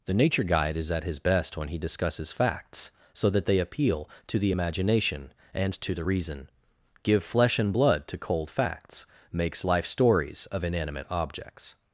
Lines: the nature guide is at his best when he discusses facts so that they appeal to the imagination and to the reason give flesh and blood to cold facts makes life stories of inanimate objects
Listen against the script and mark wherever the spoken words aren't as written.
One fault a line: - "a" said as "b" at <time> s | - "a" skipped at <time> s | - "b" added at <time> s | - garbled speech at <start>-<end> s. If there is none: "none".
none